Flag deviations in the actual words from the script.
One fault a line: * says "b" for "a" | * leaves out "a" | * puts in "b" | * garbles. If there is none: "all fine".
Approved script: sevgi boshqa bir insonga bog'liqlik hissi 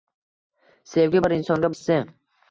* leaves out "boshqa"
* leaves out "bog'liqlik"